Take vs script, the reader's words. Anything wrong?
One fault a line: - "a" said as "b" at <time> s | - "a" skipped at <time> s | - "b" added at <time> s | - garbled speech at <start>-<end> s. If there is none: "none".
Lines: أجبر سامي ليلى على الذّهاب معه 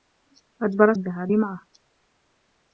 - "سامي ليلى على" skipped at 0.9 s